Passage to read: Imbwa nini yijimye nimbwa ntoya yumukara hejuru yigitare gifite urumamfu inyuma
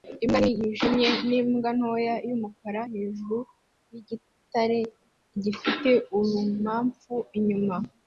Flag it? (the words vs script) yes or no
no